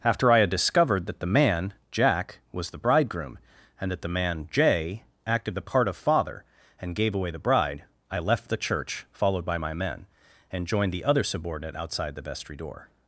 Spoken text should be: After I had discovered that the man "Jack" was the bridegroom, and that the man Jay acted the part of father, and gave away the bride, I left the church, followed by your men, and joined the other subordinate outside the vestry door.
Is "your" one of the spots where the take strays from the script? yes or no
yes